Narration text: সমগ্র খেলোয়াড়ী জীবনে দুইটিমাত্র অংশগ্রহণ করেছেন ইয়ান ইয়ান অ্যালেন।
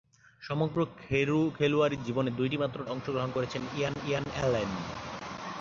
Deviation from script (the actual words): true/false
false